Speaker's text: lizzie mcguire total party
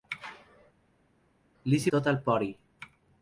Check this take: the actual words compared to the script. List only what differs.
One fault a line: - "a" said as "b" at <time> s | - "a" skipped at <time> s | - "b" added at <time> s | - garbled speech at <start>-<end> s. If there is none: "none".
- "mcguire" skipped at 1.9 s